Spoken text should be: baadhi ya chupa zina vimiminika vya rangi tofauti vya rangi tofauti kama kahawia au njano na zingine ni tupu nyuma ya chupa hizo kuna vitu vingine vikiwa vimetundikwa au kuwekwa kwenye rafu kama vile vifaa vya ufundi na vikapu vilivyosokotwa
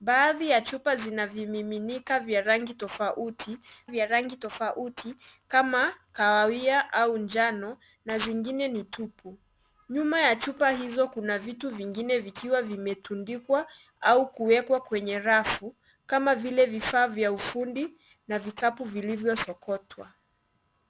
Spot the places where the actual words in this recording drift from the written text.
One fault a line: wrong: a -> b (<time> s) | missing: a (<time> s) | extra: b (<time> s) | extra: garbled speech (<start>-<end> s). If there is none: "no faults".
no faults